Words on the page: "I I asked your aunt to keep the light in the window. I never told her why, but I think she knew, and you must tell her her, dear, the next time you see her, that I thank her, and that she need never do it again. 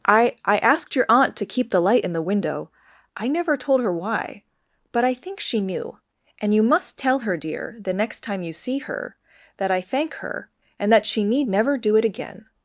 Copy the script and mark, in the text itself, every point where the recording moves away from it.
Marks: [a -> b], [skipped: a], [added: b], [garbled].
"I I asked your aunt to keep the light in the window. I never told her why, but I think she knew, and you must tell her [skipped: her,] dear, the next time you see her, that I thank her, and that she need never do it again.